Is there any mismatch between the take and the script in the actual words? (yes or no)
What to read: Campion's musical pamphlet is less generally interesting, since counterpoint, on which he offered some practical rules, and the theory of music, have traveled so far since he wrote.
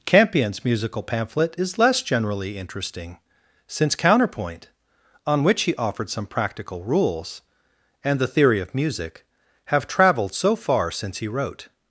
no